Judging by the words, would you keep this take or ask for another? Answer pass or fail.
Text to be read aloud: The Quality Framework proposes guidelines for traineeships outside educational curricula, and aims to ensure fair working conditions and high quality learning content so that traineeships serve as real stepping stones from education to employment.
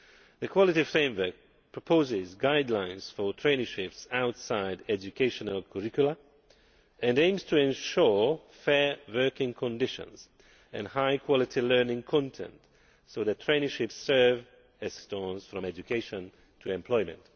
fail